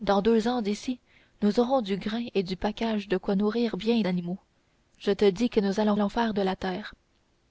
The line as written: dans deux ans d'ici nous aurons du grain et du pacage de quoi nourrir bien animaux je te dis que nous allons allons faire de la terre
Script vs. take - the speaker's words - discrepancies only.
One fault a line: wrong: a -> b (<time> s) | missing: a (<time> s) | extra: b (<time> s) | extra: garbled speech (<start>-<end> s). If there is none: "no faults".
no faults